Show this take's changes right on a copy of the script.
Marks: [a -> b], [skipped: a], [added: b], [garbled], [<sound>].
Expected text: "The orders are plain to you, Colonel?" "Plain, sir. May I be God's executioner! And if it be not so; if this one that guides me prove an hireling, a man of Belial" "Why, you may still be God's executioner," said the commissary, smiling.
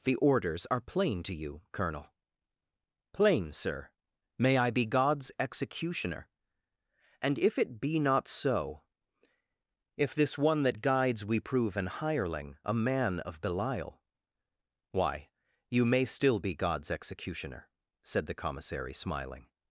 "The orders are plain to you, Colonel?" "Plain, sir. May I be God's executioner! And if it be not so; if this one that guides [me -> we] prove an hireling, a man of Belial" "Why, you may still be God's executioner," said the commissary, smiling.